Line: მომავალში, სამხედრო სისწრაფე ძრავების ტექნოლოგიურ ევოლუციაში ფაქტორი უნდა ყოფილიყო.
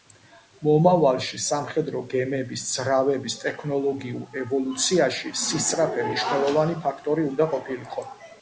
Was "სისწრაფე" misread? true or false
true